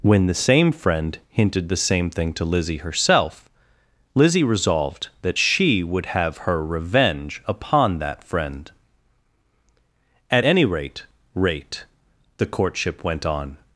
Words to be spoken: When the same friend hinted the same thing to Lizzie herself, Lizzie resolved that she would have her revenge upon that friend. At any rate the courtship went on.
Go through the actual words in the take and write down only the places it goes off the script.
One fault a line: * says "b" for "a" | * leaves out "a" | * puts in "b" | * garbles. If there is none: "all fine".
* puts in "rate"